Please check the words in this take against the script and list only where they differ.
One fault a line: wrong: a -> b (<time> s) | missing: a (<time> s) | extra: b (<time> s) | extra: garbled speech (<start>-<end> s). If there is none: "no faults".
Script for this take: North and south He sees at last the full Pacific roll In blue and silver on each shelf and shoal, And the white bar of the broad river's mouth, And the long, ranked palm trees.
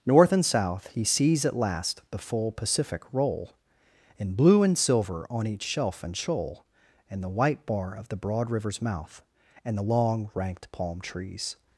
no faults